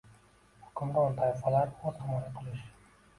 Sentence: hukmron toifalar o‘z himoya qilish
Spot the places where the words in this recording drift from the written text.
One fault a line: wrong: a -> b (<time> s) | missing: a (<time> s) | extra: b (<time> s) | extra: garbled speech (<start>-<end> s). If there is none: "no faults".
no faults